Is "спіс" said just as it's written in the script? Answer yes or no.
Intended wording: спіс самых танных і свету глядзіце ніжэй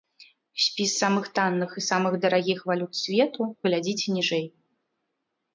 yes